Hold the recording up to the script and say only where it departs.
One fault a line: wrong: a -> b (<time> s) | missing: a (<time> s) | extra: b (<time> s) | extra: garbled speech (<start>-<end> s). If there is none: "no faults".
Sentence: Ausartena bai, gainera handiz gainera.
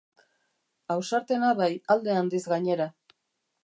wrong: gainera -> alde (2.0 s)